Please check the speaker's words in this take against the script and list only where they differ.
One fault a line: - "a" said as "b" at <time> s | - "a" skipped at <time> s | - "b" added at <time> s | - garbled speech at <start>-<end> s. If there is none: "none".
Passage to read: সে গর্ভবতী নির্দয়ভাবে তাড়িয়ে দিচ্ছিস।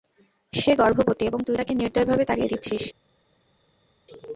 - "এবং তুই তাকে" added at 1.2 s